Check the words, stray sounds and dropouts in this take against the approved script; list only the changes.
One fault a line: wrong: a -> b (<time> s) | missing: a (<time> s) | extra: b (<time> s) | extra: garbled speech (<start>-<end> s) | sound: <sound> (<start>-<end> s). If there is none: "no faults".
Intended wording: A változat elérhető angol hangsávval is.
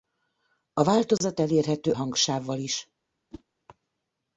missing: angol (1.9 s)
sound: whoosh (3.3-3.4 s)